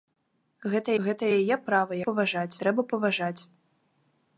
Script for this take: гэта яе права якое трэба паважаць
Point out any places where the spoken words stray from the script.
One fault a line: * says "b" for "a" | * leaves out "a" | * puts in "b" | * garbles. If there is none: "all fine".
* puts in "гэта"
* says "паважаць" for "якое"